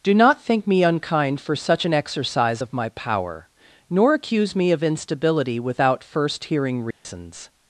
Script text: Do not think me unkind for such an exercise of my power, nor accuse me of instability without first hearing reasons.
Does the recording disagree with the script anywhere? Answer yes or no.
no